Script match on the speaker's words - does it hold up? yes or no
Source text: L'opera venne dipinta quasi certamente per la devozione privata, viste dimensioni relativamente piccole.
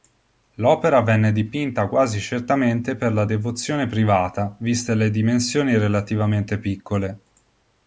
no